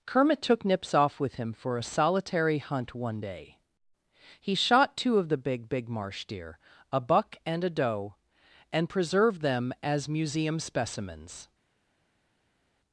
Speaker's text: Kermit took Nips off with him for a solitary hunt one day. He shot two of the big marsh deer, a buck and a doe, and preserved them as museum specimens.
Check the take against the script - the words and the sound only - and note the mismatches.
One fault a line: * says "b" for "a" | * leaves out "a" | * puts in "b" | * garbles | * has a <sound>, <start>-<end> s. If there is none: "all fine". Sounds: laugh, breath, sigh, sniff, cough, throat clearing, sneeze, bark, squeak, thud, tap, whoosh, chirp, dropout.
* puts in "big"